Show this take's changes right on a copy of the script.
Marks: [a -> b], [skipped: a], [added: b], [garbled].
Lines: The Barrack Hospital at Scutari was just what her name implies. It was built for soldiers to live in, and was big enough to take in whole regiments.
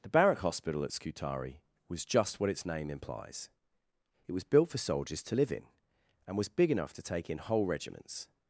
The Barrack Hospital at Scutari was just what [her -> its] name implies. It was built for soldiers to live in, and was big enough to take in whole regiments.